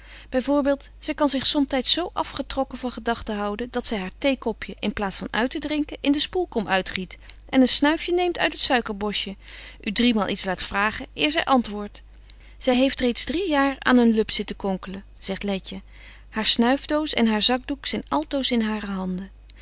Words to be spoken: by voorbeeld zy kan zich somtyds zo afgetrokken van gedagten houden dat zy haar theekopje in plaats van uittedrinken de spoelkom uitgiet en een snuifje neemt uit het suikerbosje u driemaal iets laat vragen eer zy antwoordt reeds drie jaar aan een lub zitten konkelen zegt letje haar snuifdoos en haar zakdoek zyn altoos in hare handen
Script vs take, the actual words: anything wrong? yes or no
yes